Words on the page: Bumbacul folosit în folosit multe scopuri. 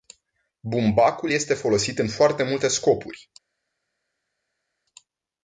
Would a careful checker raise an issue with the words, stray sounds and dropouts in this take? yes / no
yes